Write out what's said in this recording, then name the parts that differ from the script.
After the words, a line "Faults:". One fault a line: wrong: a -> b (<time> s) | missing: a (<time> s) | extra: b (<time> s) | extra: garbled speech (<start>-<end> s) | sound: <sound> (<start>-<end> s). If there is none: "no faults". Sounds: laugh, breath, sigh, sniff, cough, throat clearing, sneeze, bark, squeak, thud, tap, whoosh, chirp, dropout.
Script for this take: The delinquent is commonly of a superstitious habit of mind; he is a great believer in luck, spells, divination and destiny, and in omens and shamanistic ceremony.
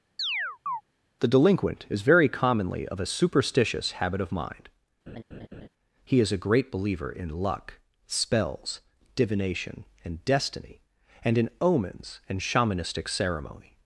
The delinquent is very commonly of a superstitious habit of mind; he is a great believer in luck, spells, divination and destiny, and in omens and shamanistic ceremony.
Faults:
sound: chirp (0.2-0.8 s)
extra: very (2.0 s)
sound: laugh (5.1-5.7 s)